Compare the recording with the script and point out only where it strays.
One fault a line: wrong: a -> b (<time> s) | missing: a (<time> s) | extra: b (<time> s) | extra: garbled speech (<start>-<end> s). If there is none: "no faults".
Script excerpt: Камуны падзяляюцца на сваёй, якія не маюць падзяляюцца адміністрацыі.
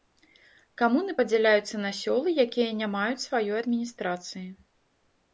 wrong: сваёй -> сёлы (2.0 s)
wrong: падзяляюцца -> сваёй (3.2 s)